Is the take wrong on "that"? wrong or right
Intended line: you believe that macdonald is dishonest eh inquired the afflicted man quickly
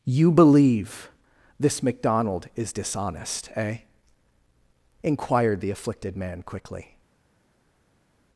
wrong